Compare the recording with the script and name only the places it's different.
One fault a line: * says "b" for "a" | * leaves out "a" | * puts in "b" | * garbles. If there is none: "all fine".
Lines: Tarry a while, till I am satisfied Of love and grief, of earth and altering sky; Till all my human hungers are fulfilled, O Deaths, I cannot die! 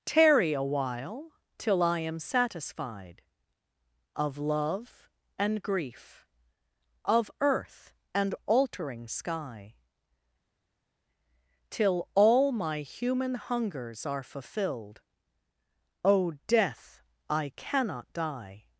* says "Death" for "Deaths"